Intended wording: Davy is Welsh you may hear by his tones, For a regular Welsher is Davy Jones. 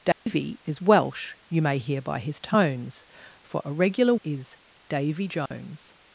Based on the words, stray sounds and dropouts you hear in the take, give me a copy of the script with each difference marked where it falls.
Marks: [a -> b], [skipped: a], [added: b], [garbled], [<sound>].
Davy [dropout] is Welsh you may hear by his tones, For a regular [skipped: Welsher] is Davy Jones. [dropout]